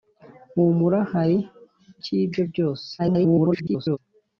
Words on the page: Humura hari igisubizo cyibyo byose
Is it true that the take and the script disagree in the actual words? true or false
true